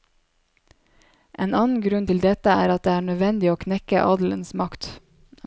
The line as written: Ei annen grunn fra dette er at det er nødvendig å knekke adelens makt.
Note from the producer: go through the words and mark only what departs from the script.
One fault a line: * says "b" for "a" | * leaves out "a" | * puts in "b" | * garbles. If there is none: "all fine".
* says "En" for "Ei"
* says "til" for "fra"